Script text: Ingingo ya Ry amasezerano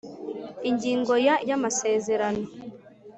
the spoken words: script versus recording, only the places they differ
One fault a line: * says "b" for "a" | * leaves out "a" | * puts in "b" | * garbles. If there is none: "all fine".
all fine